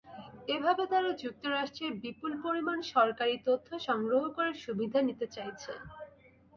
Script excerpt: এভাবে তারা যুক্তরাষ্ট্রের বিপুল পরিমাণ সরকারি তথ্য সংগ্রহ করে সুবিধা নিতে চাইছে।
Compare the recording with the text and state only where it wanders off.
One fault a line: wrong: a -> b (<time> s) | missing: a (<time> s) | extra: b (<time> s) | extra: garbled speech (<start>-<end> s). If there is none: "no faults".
no faults